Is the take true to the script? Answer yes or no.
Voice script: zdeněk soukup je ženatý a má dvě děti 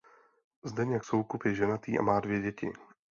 yes